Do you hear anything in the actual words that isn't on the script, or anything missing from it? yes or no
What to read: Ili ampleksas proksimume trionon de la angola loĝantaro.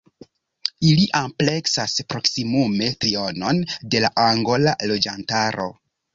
no